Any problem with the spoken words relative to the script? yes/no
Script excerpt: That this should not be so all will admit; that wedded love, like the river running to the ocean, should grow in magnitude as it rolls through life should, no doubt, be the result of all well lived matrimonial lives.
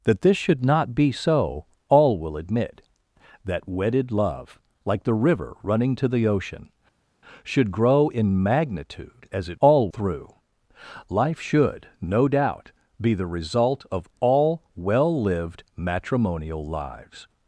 yes